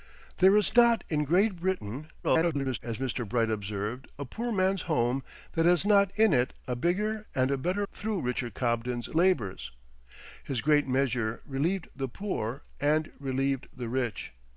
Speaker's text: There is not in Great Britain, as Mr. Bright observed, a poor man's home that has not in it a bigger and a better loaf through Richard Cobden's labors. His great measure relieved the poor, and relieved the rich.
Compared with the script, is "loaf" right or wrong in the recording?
wrong